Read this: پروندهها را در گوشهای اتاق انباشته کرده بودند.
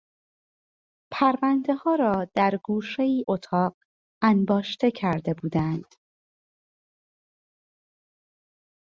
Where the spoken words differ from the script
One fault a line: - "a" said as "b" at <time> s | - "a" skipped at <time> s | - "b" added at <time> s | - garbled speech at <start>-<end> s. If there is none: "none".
none